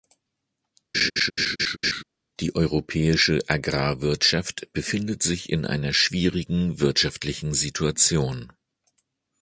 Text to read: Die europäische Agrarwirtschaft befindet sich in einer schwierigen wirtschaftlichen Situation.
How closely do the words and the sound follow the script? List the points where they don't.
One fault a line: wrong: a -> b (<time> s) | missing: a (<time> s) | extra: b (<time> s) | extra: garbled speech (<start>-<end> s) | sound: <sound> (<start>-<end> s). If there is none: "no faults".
sound: laugh (0.9-2.0 s)